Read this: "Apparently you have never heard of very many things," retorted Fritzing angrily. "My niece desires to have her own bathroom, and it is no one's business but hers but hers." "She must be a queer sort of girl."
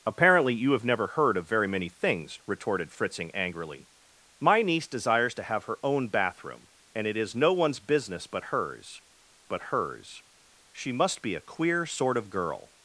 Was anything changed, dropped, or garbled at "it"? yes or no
no